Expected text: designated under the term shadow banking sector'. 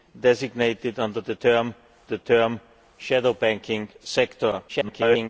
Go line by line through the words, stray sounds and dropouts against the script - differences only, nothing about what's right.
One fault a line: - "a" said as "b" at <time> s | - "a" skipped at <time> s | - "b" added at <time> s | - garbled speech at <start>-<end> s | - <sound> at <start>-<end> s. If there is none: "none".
- "the term" added at 2.0 s
- garbled speech at 4.7-5.3 s